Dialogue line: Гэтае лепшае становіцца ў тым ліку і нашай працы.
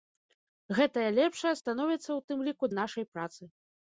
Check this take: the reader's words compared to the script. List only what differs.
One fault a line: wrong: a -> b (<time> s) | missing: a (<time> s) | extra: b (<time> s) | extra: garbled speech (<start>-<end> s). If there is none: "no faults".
no faults